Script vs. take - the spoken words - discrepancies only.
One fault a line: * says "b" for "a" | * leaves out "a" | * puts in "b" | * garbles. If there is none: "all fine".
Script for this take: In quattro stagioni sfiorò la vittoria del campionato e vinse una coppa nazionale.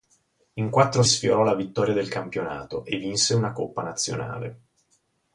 * leaves out "stagioni"